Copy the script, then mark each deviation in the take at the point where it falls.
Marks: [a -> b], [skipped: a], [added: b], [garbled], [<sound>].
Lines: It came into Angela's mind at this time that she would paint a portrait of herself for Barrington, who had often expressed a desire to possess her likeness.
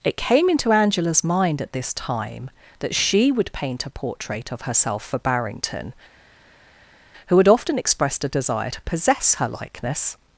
It came into Angela's mind at this time that she would paint a portrait of herself for Barrington, who had often expressed a desire to possess her likeness.